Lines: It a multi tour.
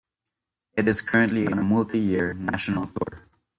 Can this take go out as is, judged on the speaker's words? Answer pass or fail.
fail